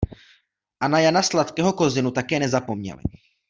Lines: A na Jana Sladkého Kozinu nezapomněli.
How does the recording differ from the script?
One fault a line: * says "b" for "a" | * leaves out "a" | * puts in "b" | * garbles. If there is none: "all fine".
* puts in "také"